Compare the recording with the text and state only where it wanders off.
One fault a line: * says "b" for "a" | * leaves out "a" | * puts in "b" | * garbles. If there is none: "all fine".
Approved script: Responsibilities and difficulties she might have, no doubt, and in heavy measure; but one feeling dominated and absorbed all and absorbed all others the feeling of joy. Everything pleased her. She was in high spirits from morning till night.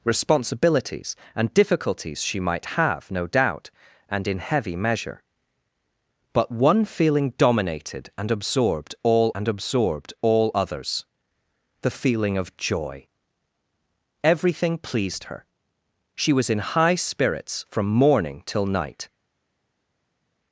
all fine